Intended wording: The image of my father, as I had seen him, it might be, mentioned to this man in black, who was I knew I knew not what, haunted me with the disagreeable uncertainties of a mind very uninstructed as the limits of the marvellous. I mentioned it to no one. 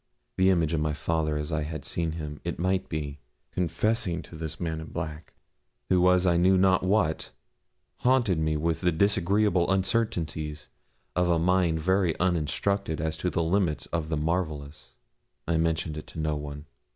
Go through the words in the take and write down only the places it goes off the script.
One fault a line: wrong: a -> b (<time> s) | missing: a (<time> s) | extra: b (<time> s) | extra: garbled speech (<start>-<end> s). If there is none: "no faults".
wrong: mentioned -> confessing (3.5 s)
missing: I knew (6.6 s)
extra: to (13.2 s)